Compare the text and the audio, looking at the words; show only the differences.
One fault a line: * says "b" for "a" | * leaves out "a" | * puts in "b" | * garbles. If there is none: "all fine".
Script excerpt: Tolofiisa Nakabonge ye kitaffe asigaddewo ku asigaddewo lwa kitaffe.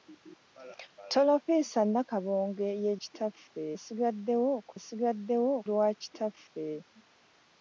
all fine